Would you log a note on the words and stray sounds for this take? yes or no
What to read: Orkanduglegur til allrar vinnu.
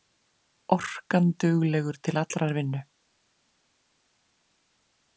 no